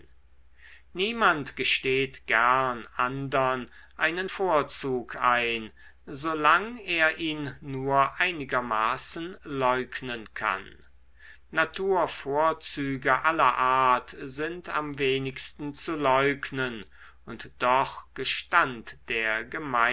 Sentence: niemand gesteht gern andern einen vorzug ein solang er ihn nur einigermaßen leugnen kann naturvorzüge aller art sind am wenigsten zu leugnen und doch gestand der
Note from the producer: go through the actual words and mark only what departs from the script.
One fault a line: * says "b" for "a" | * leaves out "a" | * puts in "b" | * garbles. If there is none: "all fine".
all fine